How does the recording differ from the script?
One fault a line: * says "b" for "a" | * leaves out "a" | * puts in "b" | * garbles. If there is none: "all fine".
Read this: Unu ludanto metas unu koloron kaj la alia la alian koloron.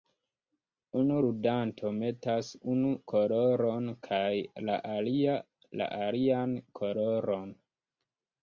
all fine